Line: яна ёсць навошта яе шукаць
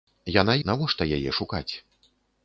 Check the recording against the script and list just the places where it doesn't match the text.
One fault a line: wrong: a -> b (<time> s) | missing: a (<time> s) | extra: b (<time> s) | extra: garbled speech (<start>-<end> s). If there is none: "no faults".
missing: ёсць (0.6 s)